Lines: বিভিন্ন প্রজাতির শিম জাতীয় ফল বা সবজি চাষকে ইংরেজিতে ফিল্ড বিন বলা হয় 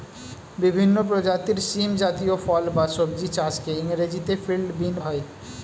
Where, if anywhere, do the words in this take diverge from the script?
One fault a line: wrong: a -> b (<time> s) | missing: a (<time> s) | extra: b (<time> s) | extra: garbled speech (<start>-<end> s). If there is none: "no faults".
missing: বলা (4.9 s)